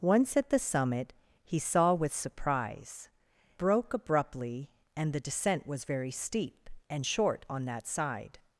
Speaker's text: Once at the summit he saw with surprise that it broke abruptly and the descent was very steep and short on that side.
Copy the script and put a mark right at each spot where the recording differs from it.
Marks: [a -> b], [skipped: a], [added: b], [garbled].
Once at the summit he saw with surprise [skipped: that it] broke abruptly and the descent was very steep and short on that side.